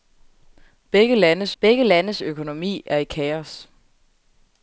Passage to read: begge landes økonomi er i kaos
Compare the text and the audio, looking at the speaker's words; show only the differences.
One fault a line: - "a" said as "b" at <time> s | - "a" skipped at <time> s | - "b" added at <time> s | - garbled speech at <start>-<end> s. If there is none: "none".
- "begge landes" added at 1.6 s